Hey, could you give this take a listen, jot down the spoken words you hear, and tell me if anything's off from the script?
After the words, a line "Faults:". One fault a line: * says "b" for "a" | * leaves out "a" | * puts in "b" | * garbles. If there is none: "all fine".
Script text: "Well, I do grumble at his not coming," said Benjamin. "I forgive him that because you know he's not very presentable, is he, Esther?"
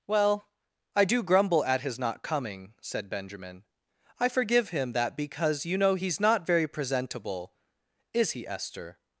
"Well, I do grumble at his not coming," said Benjamin. "I forgive him that because you know he's not very presentable, is he, Esther?"
Faults:
all fine